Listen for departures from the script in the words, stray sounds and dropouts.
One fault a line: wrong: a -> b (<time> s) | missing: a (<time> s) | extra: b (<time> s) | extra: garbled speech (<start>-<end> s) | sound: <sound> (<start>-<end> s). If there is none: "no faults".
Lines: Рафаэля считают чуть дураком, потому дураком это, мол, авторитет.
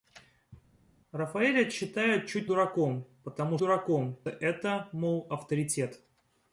no faults